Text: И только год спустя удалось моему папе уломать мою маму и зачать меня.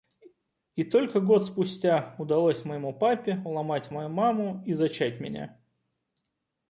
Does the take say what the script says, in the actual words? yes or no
yes